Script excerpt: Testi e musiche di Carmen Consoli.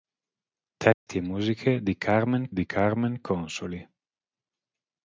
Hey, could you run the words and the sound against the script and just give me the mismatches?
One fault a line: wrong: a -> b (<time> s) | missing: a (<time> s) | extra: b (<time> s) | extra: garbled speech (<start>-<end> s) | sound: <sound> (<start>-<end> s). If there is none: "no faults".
sound: dropout (0.9-1.1 s)
extra: di Carmen (2.5 s)